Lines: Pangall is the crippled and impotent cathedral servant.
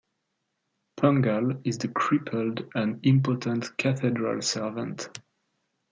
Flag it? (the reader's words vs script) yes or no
no